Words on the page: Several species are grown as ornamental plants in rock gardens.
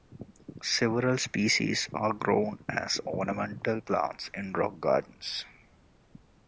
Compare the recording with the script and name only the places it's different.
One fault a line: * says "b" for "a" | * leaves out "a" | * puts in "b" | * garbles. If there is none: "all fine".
all fine